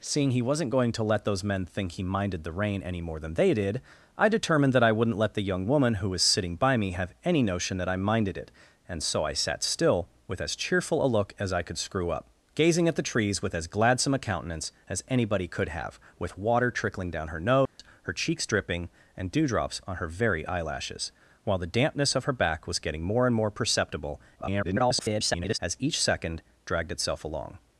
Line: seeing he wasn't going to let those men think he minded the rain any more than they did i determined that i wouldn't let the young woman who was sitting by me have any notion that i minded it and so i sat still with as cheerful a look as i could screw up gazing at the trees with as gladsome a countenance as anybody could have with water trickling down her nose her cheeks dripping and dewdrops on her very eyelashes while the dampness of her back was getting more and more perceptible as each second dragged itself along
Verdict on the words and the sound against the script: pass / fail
fail